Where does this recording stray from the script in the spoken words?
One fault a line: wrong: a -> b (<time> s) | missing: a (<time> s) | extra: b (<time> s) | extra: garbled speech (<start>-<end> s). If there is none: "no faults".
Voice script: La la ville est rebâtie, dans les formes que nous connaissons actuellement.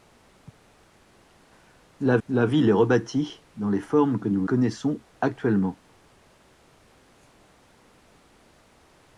no faults